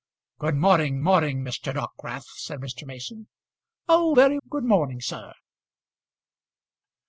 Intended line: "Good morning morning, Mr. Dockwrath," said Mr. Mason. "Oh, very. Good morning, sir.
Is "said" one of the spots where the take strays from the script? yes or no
no